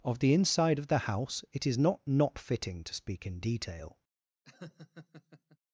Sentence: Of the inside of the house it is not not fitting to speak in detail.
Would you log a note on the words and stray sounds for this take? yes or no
yes